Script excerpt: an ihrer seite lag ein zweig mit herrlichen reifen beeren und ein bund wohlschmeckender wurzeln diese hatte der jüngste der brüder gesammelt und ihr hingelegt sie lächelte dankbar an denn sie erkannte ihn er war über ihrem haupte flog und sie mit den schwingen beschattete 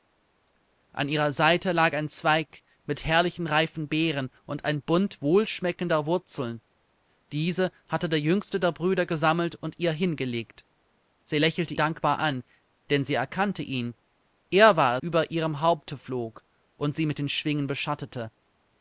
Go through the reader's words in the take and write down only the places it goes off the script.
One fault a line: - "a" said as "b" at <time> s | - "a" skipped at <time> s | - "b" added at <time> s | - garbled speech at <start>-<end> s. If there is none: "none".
none